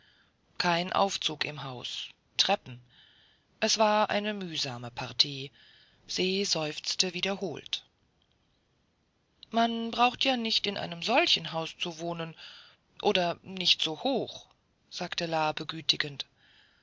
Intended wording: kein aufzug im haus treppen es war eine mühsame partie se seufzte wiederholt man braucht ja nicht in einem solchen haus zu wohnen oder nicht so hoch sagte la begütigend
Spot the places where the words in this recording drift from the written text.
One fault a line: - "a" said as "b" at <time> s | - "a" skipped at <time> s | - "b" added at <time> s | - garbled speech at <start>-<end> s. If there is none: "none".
none